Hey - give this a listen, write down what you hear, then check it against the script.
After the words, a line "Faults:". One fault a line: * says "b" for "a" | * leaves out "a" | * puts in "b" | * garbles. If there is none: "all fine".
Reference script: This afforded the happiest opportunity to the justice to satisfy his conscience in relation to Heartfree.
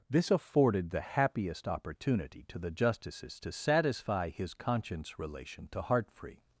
This afforded the happiest opportunity to the justices to satisfy his conscience relation to Heartfree.
Faults:
* says "justices" for "justice"
* leaves out "in"